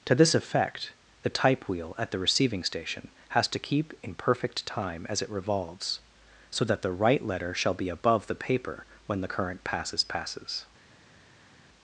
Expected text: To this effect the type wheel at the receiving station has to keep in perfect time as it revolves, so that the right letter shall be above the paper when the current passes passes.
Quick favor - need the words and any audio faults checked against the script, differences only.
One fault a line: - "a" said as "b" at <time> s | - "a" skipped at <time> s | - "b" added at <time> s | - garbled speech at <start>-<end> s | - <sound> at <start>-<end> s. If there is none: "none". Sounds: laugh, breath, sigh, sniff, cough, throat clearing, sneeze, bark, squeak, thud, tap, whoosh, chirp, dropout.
none